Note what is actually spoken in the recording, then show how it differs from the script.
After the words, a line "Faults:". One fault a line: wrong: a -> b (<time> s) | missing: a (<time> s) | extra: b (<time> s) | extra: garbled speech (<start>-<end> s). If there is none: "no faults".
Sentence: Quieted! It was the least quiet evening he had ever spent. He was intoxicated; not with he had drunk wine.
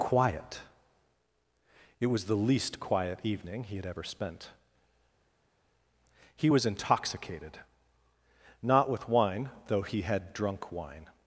Quiet! It was the least quiet evening he had ever spent. He was intoxicated; not with wine, though he had drunk wine.
Faults:
wrong: Quieted -> Quiet (0.0 s)
extra: wine though (9.1 s)